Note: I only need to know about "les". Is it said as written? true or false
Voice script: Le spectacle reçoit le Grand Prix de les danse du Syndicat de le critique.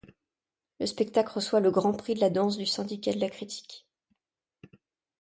false